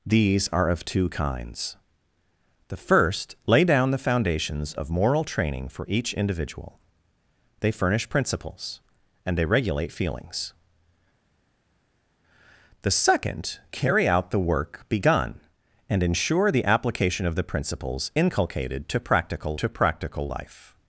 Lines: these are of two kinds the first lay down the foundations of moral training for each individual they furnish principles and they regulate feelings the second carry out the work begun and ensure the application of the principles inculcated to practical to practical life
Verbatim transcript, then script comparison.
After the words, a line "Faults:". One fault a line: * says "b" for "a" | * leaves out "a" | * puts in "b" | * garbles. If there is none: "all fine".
these are of two kinds the first lay down the foundations of moral training for each individual they furnish principles and they regulate feelings the second carry out the work begun and ensure the application of the principles inculcated to practical to practical life
Faults:
all fine